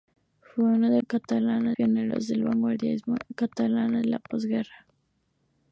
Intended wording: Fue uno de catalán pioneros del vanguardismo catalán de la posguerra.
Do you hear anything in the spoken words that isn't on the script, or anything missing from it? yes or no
no